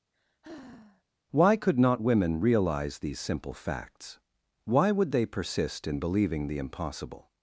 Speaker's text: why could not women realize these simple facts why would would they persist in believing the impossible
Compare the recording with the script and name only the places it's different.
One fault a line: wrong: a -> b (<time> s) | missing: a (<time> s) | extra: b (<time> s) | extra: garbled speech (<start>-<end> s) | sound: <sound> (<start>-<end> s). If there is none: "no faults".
sound: sigh (0.1-1.0 s)
missing: would (5.1 s)